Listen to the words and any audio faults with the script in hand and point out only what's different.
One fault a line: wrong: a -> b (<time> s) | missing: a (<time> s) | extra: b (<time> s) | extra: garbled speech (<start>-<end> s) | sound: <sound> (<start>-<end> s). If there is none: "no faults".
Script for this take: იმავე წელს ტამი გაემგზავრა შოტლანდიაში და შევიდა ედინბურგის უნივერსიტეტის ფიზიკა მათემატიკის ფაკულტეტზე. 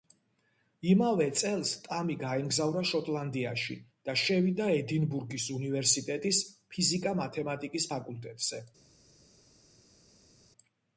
no faults